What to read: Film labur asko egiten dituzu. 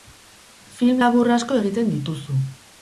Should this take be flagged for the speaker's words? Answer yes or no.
no